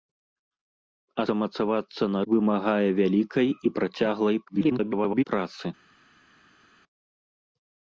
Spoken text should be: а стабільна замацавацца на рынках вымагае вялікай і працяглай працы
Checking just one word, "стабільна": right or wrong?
wrong